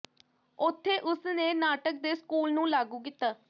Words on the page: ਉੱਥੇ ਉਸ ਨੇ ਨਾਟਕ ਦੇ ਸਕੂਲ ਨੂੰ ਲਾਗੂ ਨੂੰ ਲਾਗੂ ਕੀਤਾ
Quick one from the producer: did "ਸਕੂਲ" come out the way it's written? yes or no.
yes